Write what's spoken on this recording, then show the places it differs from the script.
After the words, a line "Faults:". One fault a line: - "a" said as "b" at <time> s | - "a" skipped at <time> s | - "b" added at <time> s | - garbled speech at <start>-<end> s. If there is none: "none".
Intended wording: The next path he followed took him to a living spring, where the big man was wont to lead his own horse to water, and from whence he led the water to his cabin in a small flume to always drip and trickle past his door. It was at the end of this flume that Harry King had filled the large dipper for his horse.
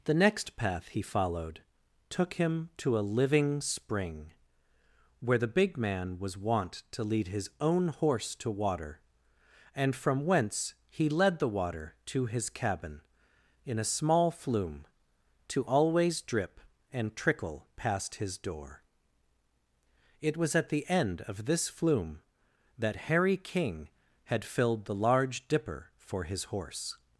The next path he followed took him to a living spring, where the big man was wont to lead his own horse to water, and from whence he led the water to his cabin in a small flume to always drip and trickle past his door. It was at the end of this flume that Harry King had filled the large dipper for his horse.
Faults:
none